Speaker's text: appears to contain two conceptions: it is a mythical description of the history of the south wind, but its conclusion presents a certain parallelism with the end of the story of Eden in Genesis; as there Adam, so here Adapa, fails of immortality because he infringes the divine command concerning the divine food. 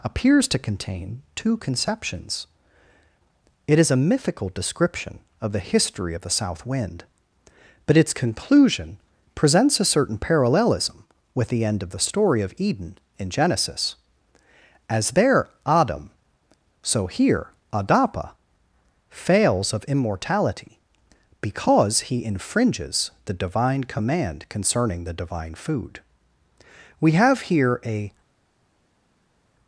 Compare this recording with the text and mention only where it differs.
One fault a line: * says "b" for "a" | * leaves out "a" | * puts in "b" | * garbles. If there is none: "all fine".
* puts in "We have here a"